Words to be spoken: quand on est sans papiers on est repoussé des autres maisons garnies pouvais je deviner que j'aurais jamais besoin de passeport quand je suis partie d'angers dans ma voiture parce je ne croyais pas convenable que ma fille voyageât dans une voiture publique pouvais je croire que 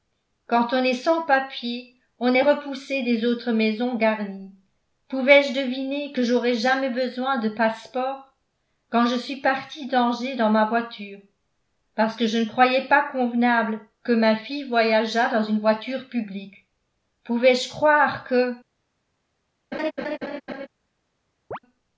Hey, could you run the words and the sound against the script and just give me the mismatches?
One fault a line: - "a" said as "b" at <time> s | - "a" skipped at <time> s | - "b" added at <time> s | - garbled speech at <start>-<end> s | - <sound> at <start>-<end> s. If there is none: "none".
- "que" added at 12.1 s
- laugh at 19.7-20.7 s
- chirp at 21.5-21.6 s